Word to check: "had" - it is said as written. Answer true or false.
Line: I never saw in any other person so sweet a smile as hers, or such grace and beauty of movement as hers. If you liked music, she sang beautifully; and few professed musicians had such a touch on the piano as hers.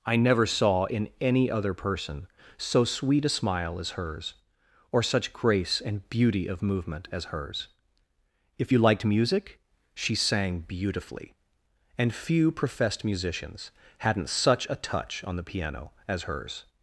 false